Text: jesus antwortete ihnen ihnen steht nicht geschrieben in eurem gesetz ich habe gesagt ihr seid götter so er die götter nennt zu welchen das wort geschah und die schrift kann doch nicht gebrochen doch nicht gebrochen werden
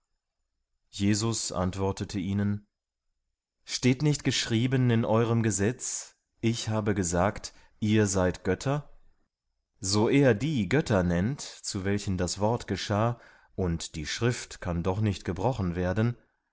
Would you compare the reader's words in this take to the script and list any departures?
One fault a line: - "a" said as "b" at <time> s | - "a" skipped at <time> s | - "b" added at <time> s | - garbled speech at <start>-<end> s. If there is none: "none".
- "ihnen" skipped at 2.7 s
- "doch nicht gebrochen" skipped at 15.7 s